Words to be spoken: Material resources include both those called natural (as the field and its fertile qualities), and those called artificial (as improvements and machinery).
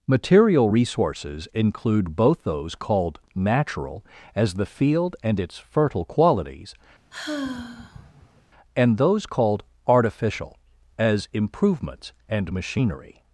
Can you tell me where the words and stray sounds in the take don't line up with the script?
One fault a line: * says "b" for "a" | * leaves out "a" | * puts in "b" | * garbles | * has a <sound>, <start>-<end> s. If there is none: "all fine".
* has a sigh, 7.1-8.4 s